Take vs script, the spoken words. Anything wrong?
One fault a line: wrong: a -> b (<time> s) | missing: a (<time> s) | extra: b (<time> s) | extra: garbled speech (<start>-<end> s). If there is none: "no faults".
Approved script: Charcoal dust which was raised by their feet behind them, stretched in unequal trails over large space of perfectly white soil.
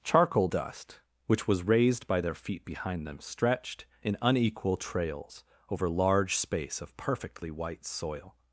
no faults